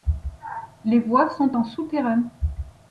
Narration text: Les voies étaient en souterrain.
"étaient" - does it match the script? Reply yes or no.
no